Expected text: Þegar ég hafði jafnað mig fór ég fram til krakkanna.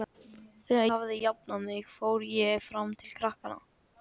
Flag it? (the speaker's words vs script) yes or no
yes